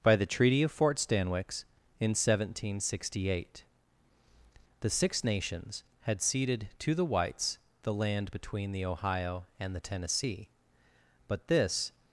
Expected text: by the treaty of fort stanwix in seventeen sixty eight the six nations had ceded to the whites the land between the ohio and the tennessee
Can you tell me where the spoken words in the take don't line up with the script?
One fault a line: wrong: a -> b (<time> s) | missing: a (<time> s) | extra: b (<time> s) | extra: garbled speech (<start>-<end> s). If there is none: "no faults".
extra: but this (11.3 s)